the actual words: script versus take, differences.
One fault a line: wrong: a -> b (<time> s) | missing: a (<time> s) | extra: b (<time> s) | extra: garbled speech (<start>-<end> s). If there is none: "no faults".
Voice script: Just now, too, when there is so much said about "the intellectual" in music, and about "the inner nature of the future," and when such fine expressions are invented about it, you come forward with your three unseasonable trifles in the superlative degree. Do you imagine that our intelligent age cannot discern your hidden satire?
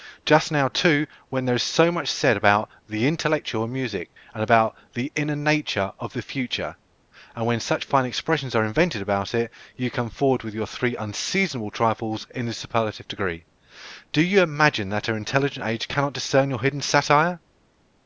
no faults